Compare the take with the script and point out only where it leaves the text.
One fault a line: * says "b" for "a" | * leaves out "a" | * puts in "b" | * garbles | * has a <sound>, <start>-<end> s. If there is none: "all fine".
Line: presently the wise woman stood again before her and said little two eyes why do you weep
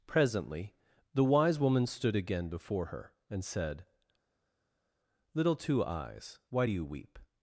all fine